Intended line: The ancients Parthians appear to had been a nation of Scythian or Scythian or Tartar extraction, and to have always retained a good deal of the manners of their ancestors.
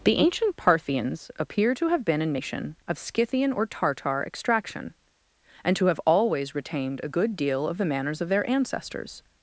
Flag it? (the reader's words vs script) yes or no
yes